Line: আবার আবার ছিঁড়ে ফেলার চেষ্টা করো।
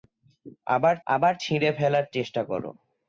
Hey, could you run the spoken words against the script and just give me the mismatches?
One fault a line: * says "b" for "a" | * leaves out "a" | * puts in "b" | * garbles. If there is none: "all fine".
all fine